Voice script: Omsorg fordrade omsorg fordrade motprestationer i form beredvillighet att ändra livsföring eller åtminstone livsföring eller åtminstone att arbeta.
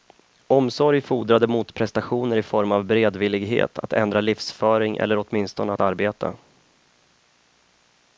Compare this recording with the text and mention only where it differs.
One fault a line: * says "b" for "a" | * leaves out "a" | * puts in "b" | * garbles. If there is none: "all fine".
* leaves out "omsorg fordrade"
* puts in "av"
* leaves out "livsföring eller åtminstone"